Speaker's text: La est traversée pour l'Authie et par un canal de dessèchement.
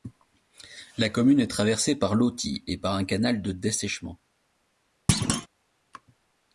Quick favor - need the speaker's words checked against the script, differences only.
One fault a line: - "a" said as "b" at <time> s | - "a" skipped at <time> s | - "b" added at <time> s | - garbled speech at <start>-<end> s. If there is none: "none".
- "commune" added at 1.1 s
- "pour" said as "par" at 1.9 s